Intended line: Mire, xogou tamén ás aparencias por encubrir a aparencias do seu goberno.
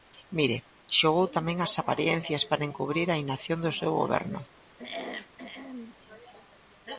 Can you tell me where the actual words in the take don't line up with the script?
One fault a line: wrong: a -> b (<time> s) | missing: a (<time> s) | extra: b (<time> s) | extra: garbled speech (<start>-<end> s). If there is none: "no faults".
wrong: por -> para (2.5 s)
wrong: aparencias -> inacción (3.2 s)